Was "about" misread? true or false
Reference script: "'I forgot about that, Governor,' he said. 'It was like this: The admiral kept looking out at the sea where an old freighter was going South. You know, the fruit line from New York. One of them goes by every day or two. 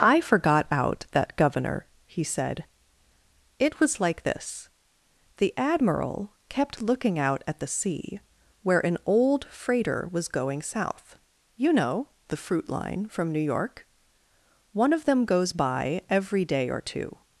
true